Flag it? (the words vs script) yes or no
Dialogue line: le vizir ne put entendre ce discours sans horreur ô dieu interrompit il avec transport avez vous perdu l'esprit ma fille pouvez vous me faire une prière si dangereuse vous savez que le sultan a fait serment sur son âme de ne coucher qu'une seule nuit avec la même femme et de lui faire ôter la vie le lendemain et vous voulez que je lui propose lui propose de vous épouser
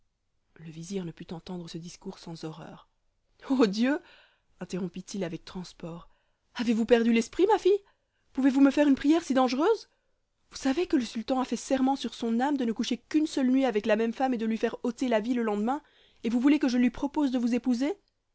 yes